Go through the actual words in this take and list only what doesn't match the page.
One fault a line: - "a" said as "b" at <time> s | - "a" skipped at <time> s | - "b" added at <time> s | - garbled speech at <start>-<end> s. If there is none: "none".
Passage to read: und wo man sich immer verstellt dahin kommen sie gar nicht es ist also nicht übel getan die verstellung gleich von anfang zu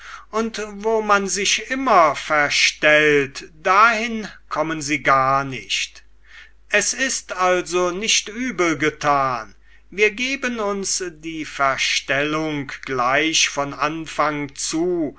- "wir geben uns" added at 9.9 s